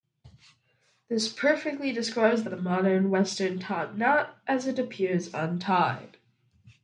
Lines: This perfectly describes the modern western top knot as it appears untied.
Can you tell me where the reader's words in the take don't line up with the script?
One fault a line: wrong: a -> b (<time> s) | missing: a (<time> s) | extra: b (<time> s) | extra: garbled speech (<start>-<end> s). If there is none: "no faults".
extra: the (2.5 s)